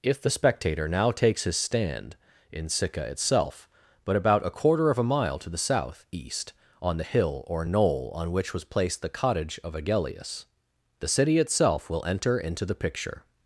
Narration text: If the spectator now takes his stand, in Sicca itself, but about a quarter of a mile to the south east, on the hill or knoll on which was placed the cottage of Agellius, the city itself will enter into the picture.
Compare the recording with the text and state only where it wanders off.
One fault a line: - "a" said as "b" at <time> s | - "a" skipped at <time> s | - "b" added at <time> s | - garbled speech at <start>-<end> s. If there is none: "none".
none